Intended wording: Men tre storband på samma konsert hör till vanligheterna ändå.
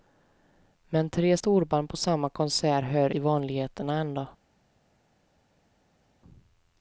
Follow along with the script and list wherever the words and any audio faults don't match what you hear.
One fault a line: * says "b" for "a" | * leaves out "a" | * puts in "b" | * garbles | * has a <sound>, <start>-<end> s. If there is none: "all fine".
all fine